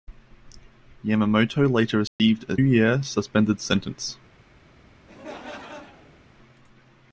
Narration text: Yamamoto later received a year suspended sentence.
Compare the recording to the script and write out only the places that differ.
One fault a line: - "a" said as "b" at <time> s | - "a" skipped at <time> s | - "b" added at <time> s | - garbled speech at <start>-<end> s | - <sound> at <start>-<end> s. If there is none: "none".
- dropout at 2.1-2.2 s
- laugh at 5.1-6.2 s